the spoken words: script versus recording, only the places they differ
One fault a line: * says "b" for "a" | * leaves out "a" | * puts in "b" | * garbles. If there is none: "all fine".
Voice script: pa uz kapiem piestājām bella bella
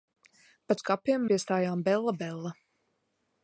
all fine